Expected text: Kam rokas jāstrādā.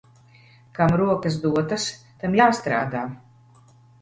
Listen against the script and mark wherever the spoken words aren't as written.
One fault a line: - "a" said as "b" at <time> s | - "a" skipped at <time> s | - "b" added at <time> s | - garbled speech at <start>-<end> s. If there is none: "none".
- "dotas tam" added at 1.4 s